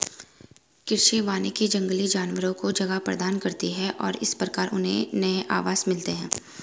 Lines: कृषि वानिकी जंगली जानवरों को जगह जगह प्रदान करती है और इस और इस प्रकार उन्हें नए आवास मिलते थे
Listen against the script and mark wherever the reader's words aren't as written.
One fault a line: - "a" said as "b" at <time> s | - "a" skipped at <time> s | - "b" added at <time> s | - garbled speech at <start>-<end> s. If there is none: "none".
- "जगह" skipped at 3.0 s
- "और इस" skipped at 4.3 s
- "थे" said as "हैं" at 6.1 s